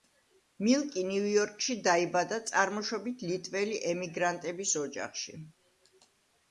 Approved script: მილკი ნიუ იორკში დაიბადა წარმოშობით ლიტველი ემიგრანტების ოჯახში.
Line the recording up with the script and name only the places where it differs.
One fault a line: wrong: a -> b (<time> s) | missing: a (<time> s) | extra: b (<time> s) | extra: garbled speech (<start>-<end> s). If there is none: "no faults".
no faults